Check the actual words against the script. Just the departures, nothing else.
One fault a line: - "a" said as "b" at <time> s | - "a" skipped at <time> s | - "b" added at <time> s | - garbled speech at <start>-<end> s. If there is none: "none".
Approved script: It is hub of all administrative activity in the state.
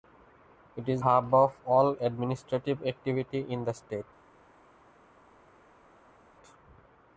none